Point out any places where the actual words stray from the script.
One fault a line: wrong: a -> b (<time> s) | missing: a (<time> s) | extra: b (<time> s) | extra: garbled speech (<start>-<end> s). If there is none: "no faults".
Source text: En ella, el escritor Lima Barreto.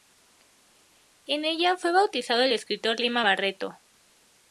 extra: fue bautizado (1.8 s)